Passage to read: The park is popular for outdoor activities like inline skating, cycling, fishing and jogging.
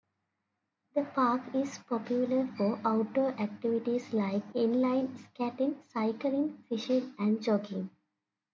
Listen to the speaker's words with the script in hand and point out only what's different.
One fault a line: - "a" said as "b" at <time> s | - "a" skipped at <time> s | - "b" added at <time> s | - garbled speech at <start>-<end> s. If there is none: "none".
none